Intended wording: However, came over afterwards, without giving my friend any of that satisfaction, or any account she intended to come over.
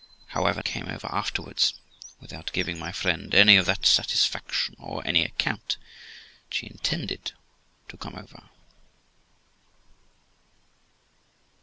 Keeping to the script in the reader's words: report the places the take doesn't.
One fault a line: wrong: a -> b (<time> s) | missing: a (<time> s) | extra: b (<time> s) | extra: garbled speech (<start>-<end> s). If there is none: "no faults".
no faults